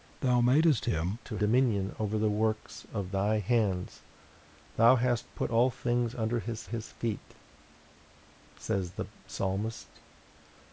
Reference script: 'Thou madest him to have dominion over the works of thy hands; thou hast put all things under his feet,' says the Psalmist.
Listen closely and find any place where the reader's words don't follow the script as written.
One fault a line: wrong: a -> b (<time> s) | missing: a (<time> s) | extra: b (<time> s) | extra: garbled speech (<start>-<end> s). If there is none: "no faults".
missing: have (1.4 s)
extra: his (6.6 s)